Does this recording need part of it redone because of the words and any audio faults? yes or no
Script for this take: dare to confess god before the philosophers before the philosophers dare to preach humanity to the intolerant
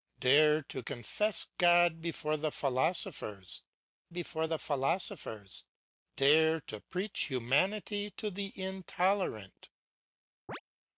yes